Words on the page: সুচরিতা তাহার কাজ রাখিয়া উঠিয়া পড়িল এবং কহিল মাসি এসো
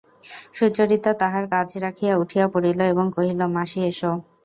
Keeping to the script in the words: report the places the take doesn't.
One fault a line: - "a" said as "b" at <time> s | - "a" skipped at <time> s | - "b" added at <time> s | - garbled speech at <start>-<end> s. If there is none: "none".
none